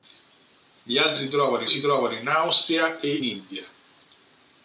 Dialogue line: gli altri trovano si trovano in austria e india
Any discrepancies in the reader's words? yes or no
no